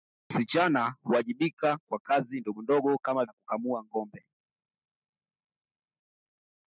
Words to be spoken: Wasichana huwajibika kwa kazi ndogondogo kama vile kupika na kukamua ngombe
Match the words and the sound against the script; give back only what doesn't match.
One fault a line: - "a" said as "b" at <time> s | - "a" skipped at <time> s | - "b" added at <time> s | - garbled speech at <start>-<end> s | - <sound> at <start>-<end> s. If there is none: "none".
- "vile kupika" skipped at 3.2 s